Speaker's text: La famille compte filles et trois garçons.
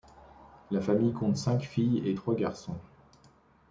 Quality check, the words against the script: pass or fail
fail